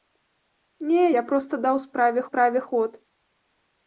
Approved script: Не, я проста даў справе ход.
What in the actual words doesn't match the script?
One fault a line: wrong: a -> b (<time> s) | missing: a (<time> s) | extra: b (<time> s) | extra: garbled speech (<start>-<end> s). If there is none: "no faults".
extra: справе (2.3 s)